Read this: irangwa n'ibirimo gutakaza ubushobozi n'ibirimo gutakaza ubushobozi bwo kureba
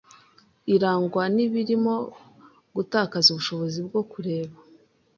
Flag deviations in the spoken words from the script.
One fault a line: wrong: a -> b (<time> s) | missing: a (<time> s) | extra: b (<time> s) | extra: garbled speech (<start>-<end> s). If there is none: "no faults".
missing: n'ibirimo gutakaza ubushobozi (3.8 s)